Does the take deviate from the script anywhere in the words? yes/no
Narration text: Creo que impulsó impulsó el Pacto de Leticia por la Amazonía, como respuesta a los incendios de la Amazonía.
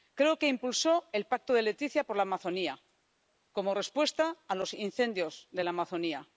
yes